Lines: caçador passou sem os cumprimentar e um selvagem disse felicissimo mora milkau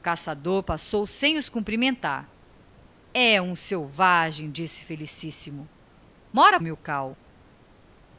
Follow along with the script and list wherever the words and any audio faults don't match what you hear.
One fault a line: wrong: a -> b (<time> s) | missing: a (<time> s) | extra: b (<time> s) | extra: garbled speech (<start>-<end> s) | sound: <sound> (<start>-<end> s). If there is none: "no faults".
no faults